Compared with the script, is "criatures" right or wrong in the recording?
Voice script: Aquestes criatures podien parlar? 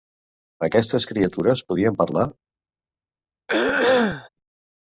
right